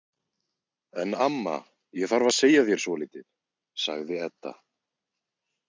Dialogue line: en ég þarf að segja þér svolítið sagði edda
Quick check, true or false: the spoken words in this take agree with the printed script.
false